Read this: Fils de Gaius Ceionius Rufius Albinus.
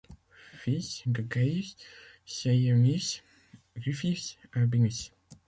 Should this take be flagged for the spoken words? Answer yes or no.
no